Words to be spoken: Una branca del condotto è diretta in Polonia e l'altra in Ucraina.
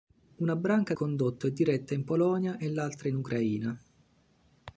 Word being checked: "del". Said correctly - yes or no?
no